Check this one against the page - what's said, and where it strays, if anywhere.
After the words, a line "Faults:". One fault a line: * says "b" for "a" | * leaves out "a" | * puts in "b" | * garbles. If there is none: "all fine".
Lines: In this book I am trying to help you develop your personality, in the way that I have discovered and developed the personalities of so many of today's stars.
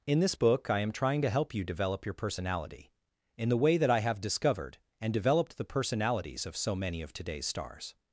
In this book I am trying to help you develop your personality, in the way that I have discovered and developed the personalities of so many of today's stars.
Faults:
all fine